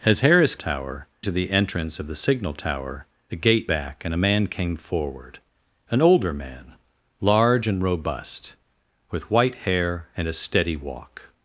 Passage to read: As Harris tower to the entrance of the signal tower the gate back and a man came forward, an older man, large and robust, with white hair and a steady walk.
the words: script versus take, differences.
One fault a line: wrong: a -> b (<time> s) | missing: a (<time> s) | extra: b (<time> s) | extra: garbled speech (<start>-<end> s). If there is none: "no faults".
no faults